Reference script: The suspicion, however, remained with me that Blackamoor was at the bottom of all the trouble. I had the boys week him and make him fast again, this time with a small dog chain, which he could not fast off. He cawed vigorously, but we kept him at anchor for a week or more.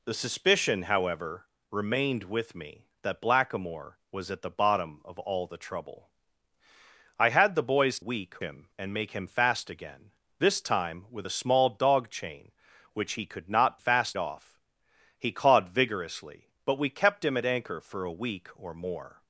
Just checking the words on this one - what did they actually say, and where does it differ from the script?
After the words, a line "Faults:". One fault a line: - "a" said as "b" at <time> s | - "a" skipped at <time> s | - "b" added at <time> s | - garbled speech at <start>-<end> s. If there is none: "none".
The suspicion, however, remained with me that Blackamoor was at the bottom of all the trouble. I had the boys week him and make him fast again, this time with a small dog chain, which he could not fast off. He cawed vigorously, but we kept him at anchor for a week or more.
Faults:
none